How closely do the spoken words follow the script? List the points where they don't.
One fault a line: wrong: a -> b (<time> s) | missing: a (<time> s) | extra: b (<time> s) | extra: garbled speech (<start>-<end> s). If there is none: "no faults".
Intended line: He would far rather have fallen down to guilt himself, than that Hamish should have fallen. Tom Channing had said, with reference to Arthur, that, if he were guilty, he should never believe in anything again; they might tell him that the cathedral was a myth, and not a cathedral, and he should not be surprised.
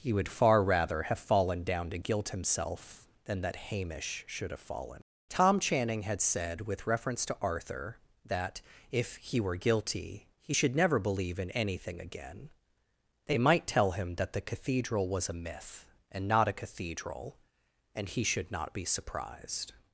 no faults